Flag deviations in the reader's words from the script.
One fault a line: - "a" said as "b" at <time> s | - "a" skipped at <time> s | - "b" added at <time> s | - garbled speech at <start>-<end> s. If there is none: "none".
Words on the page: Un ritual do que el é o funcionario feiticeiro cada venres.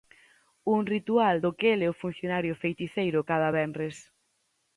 none